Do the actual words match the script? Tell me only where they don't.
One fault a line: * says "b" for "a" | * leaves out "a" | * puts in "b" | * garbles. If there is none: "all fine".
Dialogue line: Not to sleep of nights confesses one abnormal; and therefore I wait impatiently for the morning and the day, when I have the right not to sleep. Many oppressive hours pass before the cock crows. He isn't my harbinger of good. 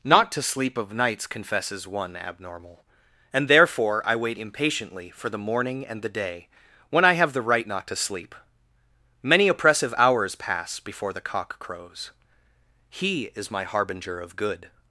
* says "is" for "isn't"